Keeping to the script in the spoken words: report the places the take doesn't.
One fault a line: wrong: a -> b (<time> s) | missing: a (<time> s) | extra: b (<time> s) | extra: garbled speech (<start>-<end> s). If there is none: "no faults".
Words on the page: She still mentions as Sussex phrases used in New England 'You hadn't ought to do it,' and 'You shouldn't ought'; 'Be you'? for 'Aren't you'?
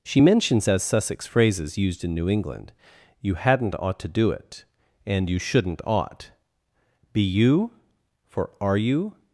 missing: still (0.2 s)
wrong: Aren't -> Are (8.6 s)